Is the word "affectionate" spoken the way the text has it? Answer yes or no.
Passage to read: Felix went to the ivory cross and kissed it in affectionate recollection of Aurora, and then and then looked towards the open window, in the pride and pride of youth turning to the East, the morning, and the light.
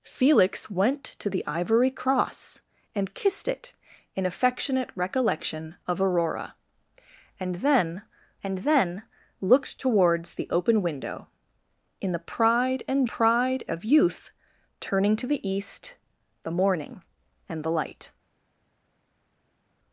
yes